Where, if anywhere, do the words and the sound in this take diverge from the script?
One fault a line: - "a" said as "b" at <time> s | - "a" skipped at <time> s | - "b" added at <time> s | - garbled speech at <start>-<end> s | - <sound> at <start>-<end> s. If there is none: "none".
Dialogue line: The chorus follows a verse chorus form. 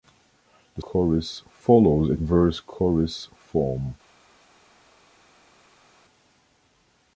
none